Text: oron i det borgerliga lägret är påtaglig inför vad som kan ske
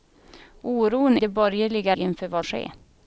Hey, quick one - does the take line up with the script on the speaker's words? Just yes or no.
no